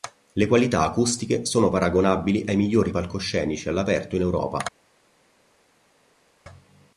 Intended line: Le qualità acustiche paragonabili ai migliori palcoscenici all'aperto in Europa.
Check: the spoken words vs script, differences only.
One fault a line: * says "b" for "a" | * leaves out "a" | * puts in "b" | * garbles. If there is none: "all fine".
* puts in "sono"